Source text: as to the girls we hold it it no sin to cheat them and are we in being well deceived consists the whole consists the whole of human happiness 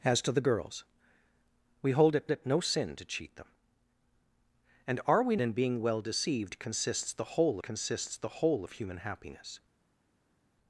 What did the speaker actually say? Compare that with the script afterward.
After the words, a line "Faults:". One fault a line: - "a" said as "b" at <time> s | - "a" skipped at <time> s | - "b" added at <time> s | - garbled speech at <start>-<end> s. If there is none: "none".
as to the girls we hold it it no sin to cheat them and are we in being well deceived consists the whole consists the whole of human happiness
Faults:
none